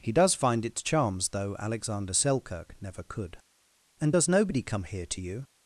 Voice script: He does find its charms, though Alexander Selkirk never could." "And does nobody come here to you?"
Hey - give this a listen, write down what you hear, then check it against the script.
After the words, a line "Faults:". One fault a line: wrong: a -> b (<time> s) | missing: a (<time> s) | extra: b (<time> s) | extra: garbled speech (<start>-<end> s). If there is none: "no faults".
He does find its charms, though Alexander Selkirk never could." "And does nobody come here to you?"
Faults:
no faults